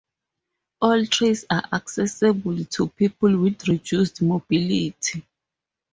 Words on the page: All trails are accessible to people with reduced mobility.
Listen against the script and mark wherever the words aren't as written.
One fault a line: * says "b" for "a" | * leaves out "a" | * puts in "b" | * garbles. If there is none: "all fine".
all fine